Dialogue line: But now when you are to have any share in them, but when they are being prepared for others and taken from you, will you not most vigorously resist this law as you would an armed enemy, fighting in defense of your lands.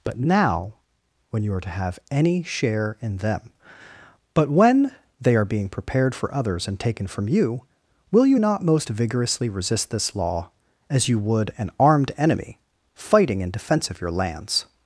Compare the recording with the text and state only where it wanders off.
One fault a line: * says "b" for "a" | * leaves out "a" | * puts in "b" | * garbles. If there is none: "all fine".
all fine